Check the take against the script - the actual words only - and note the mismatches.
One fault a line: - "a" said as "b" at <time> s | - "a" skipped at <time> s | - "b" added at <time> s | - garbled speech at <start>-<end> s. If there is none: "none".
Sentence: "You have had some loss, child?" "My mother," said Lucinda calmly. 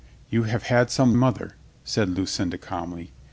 - "loss child My" skipped at 1.1 s